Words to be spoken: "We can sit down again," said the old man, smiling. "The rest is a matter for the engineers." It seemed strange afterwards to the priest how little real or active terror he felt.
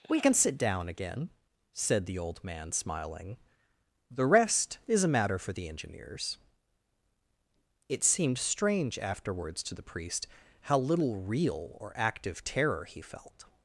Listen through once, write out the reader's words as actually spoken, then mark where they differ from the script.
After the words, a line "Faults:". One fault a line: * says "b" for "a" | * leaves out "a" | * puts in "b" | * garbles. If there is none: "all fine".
"We can sit down again," said the old man, smiling. "The rest is a matter for the engineers." It seemed strange afterwards to the priest how little real or active terror he felt.
Faults:
all fine